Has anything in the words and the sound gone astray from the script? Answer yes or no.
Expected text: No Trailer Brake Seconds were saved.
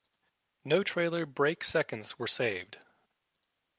no